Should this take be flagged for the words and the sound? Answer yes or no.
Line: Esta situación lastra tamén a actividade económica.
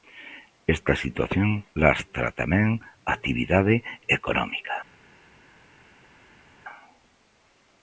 no